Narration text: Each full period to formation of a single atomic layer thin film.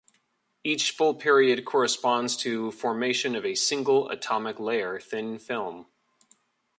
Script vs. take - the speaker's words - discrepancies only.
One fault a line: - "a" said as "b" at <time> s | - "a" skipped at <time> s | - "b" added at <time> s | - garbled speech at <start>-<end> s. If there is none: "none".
- "corresponds" added at 1.6 s